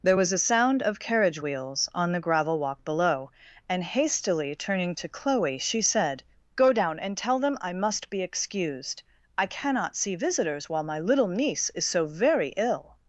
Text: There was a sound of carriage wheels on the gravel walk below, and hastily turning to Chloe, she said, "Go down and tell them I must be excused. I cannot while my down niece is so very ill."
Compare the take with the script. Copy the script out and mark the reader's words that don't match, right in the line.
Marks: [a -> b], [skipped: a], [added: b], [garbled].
There was a sound of carriage wheels on the gravel walk below, and hastily turning to Chloe, she said, "Go down and tell them I must be excused. I cannot [added: see visitors] while my [down -> little] niece is so very ill."